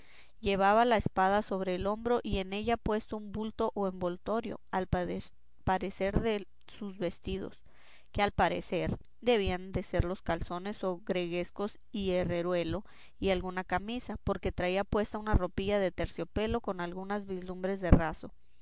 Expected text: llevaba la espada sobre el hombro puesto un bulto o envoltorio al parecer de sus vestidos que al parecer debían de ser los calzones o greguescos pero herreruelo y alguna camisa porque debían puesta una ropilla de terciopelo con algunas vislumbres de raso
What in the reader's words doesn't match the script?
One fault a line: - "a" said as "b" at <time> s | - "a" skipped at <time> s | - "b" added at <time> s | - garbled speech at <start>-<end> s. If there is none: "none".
- "y en ella" added at 2.2 s
- "pero" said as "y" at 11.9 s
- "debían" said as "traía" at 14.5 s